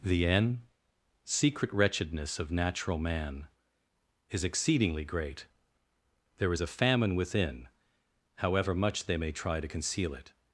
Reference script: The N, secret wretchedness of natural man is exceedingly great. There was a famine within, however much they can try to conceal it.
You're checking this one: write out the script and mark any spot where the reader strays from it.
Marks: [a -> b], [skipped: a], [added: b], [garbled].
The N, secret wretchedness of natural man is exceedingly great. There [was -> is] a famine within, however much they [can -> may] try to conceal it.